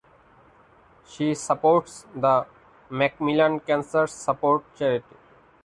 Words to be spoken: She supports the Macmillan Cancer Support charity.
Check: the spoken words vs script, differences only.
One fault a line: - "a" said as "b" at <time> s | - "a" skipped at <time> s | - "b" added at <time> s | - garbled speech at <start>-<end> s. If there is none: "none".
none